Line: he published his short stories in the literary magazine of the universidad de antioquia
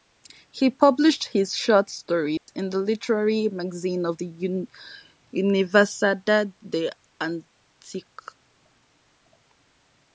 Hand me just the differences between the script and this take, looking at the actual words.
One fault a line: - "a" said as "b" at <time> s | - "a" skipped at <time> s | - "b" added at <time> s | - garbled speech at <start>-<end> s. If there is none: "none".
none